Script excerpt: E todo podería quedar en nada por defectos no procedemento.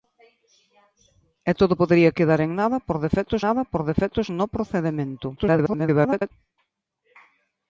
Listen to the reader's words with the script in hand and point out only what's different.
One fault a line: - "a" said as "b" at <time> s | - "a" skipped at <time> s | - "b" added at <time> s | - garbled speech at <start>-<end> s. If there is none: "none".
- "nada por defectos" added at 3.5 s
- garbled speech at 5.4-6.3 s